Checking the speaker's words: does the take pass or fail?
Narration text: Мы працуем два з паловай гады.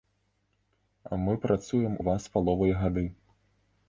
pass